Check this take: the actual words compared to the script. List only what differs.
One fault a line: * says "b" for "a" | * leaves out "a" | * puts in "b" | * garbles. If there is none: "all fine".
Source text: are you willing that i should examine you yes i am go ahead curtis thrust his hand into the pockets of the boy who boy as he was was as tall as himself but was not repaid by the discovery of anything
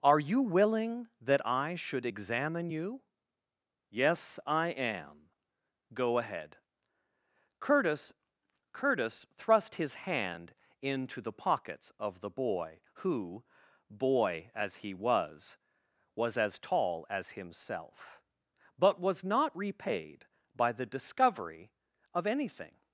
* puts in "curtis"